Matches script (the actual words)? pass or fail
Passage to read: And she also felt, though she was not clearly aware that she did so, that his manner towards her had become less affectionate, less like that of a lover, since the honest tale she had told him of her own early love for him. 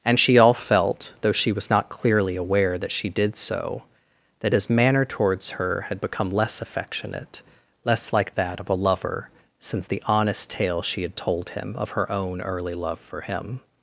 fail